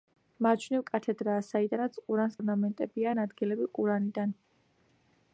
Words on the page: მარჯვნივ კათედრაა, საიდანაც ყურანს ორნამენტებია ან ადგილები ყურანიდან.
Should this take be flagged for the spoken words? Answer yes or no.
no